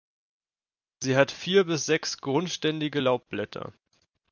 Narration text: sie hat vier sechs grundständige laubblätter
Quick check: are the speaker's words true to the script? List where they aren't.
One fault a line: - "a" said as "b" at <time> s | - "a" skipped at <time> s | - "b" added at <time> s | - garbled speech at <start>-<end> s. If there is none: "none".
- "bis" added at 1.6 s